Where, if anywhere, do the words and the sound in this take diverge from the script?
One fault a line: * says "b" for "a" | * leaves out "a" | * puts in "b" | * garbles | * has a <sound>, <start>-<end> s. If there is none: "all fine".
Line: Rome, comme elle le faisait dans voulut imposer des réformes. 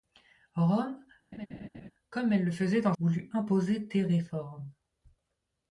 * has a laugh, 1.3-1.9 s